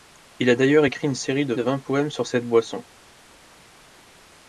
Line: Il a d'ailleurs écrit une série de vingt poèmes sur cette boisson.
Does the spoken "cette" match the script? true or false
true